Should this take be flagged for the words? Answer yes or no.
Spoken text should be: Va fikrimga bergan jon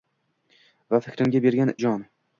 no